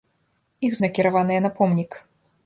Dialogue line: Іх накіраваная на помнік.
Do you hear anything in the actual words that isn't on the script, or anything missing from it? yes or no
no